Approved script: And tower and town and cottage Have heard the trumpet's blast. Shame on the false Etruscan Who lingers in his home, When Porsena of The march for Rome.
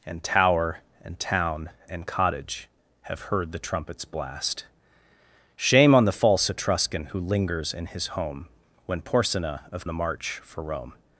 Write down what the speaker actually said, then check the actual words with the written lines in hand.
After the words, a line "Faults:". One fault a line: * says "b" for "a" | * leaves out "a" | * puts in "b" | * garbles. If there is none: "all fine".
And tower and town and cottage Have heard the trumpet's blast. Shame on the false Etruscan Who lingers in his home, When Porsena of The march for Rome.
Faults:
all fine